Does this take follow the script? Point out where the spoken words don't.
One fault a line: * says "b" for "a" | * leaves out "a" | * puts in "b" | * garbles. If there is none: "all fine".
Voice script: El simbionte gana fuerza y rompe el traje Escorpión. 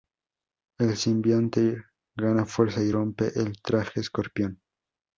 all fine